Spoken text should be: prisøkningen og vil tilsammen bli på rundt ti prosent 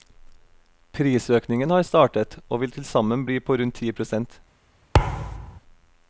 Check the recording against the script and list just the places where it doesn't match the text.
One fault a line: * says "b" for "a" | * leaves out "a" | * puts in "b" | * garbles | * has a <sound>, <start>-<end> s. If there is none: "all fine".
* puts in "har startet"
* has a thud, 4.9-5.6 s